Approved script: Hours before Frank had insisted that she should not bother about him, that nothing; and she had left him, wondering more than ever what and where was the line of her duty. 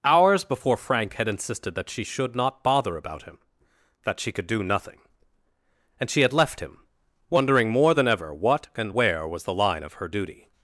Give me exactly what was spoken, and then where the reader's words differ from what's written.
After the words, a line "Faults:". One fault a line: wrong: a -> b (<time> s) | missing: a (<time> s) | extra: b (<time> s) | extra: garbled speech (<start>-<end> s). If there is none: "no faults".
Hours before Frank had insisted that she should not bother about him, that she could do nothing; and she had left him, wondering more than ever what and where was the line of her duty.
Faults:
extra: she could do (4.2 s)